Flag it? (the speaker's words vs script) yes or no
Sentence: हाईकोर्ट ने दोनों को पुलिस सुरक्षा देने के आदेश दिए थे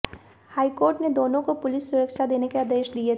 no